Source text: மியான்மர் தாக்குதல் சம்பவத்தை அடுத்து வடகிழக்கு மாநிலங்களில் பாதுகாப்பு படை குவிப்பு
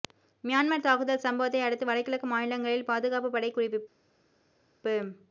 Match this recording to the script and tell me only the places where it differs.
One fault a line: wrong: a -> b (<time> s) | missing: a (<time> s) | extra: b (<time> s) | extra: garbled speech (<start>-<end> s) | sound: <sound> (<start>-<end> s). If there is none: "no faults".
no faults